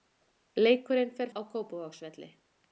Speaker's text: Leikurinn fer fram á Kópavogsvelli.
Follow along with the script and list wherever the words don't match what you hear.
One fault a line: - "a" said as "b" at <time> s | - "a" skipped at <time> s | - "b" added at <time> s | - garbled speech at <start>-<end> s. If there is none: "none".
- "fram" skipped at 1.3 s